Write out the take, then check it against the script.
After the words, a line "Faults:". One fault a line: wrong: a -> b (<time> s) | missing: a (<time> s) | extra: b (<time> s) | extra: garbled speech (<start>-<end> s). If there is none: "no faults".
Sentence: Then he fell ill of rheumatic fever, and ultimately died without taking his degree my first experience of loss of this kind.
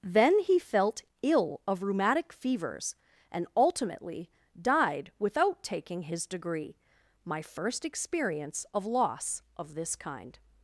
Then he felt ill of rheumatic fevers, and ultimately died without taking his degree my first experience of loss of this kind.
Faults:
wrong: fell -> felt (0.6 s)
wrong: fever -> fevers (2.3 s)